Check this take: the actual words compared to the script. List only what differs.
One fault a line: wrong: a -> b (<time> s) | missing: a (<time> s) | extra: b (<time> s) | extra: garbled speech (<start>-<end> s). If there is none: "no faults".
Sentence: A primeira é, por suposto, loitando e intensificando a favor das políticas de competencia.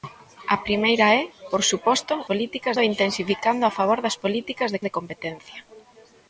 wrong: loitando -> políticas (2.3 s)
extra: de (4.8 s)